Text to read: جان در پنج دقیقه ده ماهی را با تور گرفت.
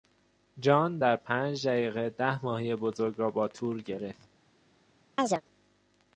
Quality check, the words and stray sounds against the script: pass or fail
fail